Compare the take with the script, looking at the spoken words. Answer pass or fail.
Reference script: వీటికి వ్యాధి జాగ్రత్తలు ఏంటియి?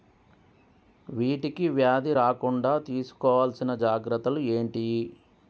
fail